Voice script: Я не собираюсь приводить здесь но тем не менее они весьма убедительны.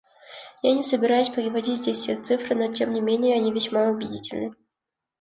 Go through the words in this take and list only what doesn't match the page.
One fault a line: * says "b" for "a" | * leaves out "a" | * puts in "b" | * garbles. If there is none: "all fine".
* puts in "все цифры"